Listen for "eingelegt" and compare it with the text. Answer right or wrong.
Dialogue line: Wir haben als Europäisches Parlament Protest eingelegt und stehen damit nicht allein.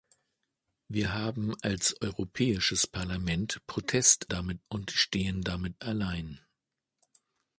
wrong